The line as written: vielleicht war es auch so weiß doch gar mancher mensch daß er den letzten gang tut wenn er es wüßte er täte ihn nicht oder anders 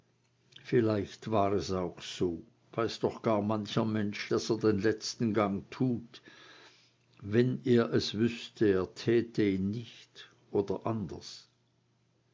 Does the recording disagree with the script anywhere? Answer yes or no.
no